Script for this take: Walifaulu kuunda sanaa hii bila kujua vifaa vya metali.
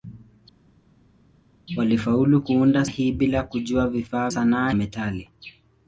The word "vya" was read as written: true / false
false